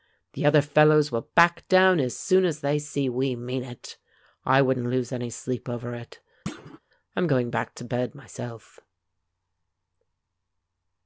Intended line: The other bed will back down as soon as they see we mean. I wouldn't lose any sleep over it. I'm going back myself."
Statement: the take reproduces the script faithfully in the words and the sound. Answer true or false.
false